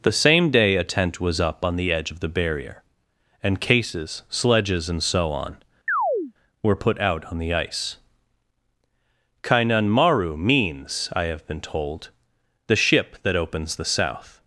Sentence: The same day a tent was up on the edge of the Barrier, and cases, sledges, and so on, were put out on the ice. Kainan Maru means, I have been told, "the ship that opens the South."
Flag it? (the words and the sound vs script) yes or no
yes